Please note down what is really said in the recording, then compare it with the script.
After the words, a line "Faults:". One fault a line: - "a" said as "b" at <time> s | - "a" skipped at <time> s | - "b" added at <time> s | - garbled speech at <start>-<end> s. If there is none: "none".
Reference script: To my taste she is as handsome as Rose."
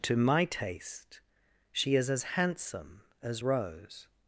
To my taste she is as handsome as Rose."
Faults:
none